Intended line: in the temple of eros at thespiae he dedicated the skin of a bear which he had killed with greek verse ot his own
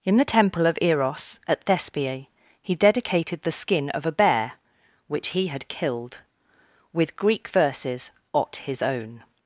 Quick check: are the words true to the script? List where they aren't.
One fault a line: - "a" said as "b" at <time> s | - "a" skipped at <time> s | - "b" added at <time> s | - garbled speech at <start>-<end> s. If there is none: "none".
- "verse" said as "verses" at 7.5 s